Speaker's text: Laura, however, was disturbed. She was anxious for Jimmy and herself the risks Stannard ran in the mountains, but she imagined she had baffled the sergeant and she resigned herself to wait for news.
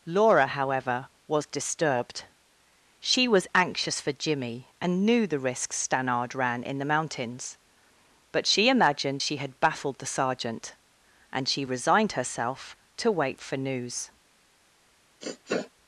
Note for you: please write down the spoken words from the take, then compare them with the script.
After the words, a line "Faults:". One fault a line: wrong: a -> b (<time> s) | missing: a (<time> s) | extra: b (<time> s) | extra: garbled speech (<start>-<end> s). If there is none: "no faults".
Laura, however, was disturbed. She was anxious for Jimmy and knew the risks Stannard ran in the mountains, but she imagined she had baffled the sergeant and she resigned herself to wait for news.
Faults:
wrong: herself -> knew (5.0 s)